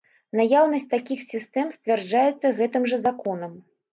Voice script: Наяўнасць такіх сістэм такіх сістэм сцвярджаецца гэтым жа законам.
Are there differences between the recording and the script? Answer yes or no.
yes